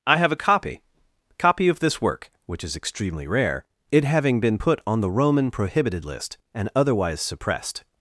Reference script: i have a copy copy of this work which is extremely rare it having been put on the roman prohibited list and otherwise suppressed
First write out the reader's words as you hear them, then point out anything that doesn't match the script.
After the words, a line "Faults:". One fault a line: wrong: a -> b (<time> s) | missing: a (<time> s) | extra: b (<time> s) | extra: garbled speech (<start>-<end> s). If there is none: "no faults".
i have a copy copy of this work which is extremely rare it having been put on the roman prohibited list and otherwise suppressed
Faults:
no faults